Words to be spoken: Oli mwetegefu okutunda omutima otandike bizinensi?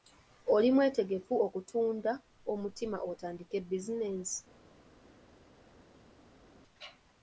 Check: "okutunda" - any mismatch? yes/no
no